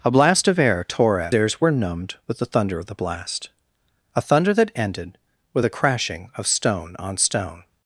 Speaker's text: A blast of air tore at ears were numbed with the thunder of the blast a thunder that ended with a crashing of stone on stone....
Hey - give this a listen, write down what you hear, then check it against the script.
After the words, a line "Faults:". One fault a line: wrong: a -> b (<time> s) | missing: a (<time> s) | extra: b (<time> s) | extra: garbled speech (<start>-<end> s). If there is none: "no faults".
A blast of air tore at ears were numbed with the thunder of the blast a thunder that ended with a crashing of stone on stone....
Faults:
no faults